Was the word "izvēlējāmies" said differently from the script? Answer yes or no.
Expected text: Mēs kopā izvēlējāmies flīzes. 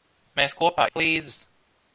yes